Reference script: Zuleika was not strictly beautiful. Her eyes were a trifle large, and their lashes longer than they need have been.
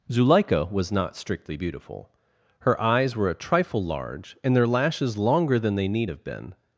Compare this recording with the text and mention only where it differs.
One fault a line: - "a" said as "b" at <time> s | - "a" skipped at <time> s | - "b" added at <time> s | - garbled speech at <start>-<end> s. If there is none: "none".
none